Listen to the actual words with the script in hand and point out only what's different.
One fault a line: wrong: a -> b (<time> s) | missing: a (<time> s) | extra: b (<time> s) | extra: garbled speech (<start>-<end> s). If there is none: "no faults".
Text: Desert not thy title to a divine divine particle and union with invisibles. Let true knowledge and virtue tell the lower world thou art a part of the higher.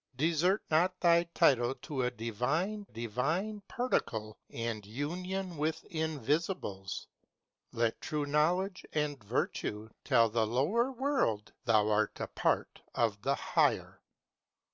no faults